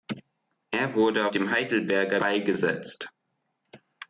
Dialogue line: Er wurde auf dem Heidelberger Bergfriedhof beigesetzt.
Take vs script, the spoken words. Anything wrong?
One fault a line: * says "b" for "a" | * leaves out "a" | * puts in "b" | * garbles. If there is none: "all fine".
* leaves out "auf"
* leaves out "Bergfriedhof"